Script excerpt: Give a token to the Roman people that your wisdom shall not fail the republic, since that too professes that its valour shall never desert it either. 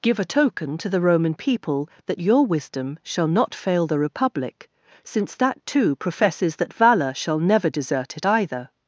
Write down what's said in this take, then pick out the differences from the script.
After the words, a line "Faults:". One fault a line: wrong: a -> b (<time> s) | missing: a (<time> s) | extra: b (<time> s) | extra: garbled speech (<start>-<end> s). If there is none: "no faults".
Give a token to the Roman people that your wisdom shall not fail the republic, since that too professes that valour shall never desert it either.
Faults:
missing: its (6.7 s)